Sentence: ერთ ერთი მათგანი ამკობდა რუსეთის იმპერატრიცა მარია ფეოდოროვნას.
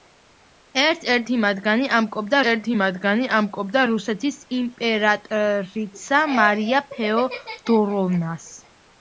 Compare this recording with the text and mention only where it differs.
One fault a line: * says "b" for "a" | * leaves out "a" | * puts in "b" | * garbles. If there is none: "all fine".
* puts in "ერთი მათგანი ამკობდა"